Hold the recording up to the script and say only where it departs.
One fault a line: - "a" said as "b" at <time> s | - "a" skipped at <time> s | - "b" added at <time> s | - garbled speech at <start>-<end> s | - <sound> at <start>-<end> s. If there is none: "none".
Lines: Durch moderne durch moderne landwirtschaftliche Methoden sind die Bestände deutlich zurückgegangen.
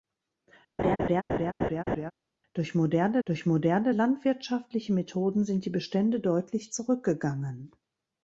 - laugh at 0.8-2.1 s